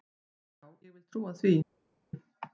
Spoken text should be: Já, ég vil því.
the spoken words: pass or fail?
fail